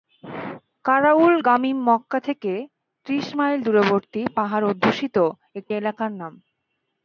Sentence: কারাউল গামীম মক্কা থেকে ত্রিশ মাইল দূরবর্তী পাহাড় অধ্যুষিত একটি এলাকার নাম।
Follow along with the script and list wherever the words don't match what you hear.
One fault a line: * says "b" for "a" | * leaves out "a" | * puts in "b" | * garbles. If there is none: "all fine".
all fine